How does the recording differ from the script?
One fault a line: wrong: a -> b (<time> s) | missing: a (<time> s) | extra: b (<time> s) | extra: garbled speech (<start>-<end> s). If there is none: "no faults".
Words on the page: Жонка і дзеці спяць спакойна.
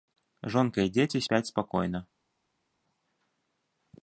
no faults